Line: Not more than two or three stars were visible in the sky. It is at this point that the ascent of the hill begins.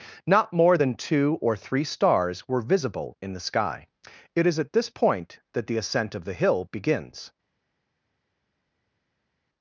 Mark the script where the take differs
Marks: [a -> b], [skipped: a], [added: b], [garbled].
Not more than two or three stars were visible in the sky. It is at this point that the ascent of the hill begins.